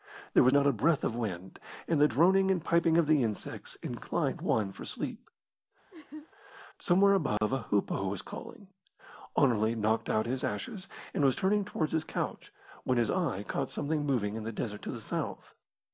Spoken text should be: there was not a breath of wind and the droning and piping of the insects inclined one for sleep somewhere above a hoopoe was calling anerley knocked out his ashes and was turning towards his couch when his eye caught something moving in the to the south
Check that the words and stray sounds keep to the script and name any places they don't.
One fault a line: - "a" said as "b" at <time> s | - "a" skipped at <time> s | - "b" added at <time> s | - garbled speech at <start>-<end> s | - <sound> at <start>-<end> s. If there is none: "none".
- laugh at 5.9-6.3 s
- dropout at 7.4-7.4 s
- "desert" added at 14.5 s